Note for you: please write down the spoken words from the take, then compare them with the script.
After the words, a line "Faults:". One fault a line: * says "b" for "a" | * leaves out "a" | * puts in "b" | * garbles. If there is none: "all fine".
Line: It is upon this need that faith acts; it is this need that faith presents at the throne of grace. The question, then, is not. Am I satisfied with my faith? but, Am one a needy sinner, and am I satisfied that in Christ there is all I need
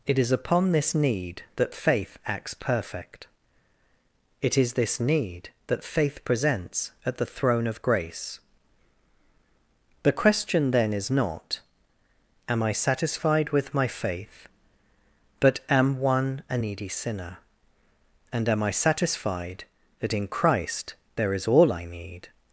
It is upon this need that faith acts; perfect it is this need that faith presents at the throne of grace. The question, then, is not. Am I satisfied with my faith? but, Am one a needy sinner, and am I satisfied that in Christ there is all I need
Faults:
* puts in "perfect"